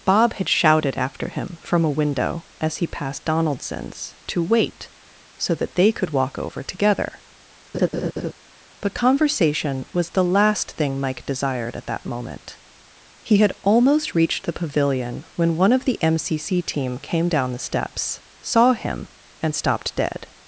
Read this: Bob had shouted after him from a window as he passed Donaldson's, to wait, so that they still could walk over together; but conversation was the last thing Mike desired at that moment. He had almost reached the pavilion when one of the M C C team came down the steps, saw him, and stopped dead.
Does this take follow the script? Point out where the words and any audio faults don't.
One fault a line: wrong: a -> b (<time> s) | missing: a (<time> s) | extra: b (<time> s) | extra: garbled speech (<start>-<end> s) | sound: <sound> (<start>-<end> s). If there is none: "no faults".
missing: still (5.9 s)
sound: laugh (7.7-8.3 s)